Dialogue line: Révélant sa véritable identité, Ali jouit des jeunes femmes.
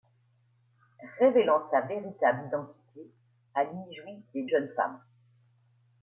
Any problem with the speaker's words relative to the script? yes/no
no